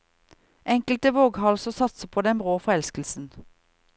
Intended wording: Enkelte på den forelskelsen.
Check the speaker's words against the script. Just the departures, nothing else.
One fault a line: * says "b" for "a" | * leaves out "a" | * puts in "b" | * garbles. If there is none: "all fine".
* puts in "våghalser satser"
* puts in "brå"